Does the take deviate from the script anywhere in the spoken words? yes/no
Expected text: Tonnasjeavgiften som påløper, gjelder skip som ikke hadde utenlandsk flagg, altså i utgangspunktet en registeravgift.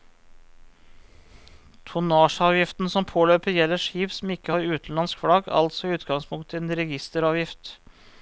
yes